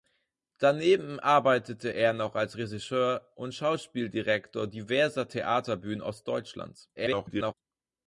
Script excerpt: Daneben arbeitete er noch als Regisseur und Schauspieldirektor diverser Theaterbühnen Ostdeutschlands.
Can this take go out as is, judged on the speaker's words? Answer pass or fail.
fail